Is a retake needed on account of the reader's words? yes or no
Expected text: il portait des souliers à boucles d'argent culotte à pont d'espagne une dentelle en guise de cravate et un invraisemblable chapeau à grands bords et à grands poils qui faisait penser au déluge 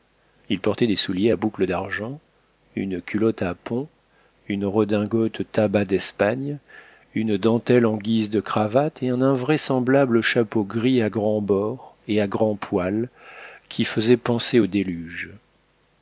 yes